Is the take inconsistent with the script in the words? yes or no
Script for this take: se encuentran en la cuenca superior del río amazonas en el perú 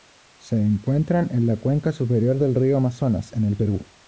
no